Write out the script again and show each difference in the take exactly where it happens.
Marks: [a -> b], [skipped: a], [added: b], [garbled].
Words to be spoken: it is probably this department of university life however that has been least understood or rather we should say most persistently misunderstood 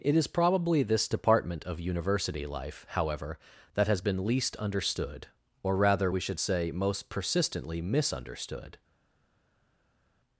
it is probably this department of university life however that has been least understood or rather we should say most persistently misunderstood